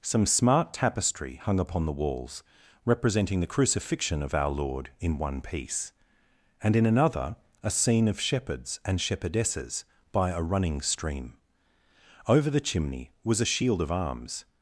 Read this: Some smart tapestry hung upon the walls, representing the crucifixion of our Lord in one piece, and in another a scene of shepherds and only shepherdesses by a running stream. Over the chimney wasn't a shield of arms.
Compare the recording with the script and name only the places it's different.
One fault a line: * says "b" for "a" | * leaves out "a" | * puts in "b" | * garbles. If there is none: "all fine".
* leaves out "only"
* says "was" for "wasn't"